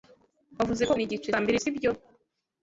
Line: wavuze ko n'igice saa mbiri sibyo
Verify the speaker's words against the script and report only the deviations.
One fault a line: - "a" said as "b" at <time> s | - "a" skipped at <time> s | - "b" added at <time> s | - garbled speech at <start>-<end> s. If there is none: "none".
none